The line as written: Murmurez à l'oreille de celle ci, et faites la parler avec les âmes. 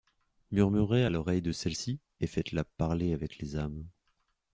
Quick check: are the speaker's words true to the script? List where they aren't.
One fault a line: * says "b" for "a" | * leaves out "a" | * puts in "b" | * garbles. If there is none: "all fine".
all fine